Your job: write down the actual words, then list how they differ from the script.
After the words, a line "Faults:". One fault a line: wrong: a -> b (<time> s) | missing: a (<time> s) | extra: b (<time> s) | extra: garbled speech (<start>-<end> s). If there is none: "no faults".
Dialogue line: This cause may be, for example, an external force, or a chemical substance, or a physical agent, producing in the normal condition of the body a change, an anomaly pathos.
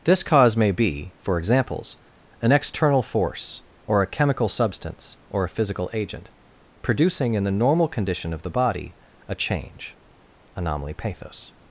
This cause may be, for examples, an external force, or a chemical substance, or a physical agent, producing in the normal condition of the body a change, anomaly pathos.
Faults:
wrong: example -> examples (1.4 s)
missing: an (9.9 s)